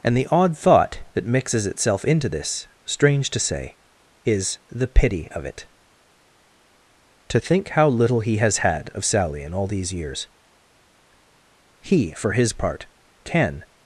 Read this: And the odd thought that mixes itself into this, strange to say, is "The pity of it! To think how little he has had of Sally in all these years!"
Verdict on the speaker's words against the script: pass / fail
fail